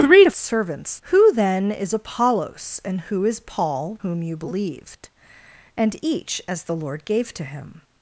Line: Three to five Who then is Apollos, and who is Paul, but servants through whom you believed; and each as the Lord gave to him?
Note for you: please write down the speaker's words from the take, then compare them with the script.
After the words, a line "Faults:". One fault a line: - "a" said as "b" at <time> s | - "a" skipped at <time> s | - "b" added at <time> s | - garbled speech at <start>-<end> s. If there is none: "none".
Three to servants Who then is Apollos, and who is Paul, whom you believed; and each as the Lord gave to him?
Faults:
- "five" said as "servants" at 0.3 s
- "but servants through" skipped at 4.0 s